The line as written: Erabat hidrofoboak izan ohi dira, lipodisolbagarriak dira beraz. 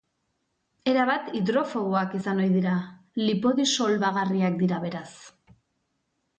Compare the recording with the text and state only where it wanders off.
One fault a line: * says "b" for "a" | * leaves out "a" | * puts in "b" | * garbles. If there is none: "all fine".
all fine